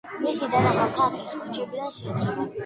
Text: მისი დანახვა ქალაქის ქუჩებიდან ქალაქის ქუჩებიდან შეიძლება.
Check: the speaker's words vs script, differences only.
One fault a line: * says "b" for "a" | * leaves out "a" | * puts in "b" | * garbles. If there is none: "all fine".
* leaves out "ქალაქის ქუჩებიდან"